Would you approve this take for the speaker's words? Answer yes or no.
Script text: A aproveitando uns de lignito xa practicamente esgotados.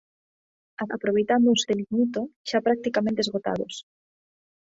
yes